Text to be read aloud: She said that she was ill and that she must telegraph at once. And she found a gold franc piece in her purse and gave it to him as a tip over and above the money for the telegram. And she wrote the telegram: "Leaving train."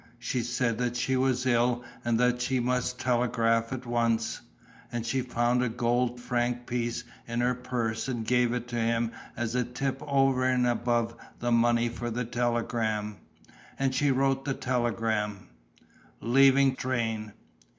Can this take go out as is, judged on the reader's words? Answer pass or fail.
pass